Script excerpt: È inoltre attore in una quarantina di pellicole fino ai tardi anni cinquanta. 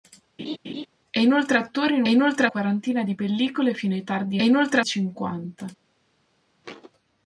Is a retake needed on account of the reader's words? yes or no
yes